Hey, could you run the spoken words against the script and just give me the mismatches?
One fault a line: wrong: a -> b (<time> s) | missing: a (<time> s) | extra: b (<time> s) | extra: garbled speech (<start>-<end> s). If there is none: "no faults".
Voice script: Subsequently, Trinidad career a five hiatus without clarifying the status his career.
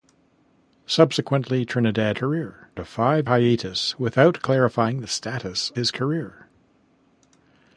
no faults